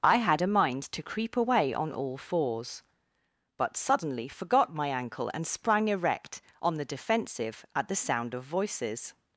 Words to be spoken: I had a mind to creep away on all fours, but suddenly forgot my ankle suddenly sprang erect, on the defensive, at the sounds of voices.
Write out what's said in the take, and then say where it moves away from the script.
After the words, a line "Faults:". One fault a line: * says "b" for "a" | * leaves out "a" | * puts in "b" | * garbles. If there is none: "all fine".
I had a mind to creep away on all fours, but suddenly forgot my ankle and sprang erect, on the defensive, at the sound of voices.
Faults:
* says "and" for "suddenly"
* says "sound" for "sounds"